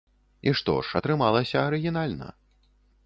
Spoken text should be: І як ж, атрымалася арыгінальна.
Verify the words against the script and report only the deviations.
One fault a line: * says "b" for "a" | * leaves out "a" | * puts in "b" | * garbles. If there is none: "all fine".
* says "што" for "як"